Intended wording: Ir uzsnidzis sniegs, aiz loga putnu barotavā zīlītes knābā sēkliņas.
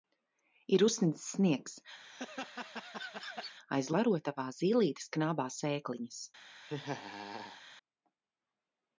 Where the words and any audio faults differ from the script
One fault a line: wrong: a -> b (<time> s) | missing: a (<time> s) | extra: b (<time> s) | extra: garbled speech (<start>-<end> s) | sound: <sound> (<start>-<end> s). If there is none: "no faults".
sound: laugh (2.0-3.6 s)
missing: loga putnu (3.9 s)
sound: laugh (6.6-7.6 s)